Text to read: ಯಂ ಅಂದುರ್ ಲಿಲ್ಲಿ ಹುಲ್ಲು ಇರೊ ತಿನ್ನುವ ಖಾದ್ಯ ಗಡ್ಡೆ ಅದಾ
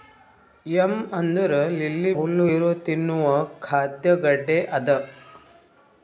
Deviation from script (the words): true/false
false